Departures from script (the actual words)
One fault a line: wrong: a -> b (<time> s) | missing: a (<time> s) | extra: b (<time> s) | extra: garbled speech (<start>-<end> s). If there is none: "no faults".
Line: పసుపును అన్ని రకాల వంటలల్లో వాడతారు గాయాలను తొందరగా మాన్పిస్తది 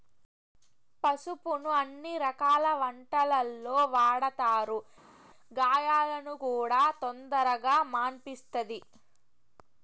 extra: కూడా (6.4 s)